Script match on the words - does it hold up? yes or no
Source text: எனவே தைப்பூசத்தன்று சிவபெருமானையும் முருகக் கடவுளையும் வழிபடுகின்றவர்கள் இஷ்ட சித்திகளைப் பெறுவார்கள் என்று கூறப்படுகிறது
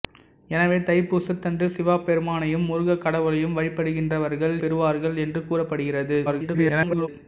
no